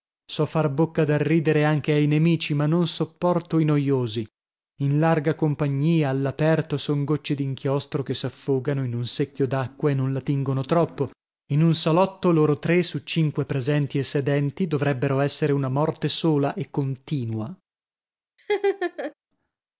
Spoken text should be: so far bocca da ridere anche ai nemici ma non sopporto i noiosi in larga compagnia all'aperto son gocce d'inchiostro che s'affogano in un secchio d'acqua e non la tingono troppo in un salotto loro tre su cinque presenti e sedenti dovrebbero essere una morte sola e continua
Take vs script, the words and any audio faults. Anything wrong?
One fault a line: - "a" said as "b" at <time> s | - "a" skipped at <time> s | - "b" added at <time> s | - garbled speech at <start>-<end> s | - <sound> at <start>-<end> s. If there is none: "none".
- laugh at 18.4-19.1 s